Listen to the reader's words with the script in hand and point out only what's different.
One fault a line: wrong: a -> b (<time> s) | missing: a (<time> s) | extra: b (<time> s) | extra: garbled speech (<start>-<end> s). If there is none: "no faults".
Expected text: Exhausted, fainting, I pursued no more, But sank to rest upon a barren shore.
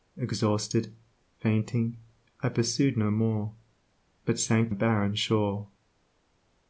missing: to rest upon (4.7 s)